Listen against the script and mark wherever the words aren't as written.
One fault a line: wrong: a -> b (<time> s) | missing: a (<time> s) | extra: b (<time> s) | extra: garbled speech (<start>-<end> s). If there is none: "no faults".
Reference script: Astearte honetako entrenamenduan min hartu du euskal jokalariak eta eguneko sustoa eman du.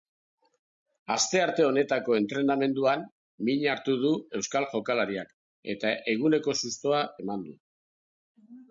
no faults